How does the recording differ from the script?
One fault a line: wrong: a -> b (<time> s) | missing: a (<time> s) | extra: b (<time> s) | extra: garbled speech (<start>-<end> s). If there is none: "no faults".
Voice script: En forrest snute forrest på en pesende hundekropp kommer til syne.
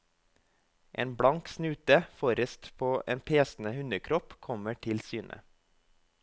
wrong: forrest -> blank (1.2 s)